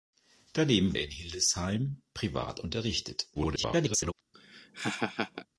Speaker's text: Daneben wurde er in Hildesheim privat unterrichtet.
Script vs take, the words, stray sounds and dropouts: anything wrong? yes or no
yes